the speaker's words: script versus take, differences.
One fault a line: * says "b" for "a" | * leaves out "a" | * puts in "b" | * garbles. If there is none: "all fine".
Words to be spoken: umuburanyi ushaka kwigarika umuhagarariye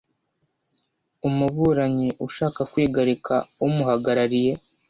all fine